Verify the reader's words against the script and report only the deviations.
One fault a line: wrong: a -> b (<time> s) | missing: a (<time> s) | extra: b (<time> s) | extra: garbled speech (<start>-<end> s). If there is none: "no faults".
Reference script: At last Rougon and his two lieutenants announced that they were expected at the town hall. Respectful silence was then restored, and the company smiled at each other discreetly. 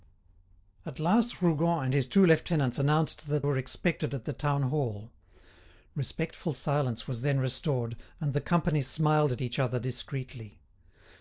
missing: they (3.5 s)